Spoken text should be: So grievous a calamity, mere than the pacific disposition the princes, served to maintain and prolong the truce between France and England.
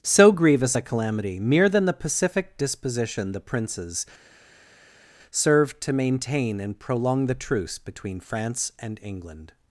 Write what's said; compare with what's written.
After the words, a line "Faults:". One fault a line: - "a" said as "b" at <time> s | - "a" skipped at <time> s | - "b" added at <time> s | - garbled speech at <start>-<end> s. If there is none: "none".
So grievous a calamity, mere than the pacific disposition the princes, served to maintain and prolong the truce between France and England.
Faults:
none